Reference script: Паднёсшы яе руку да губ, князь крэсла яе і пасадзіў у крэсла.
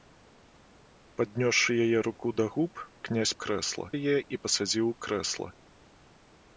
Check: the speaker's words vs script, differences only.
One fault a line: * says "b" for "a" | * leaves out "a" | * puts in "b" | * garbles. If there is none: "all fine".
all fine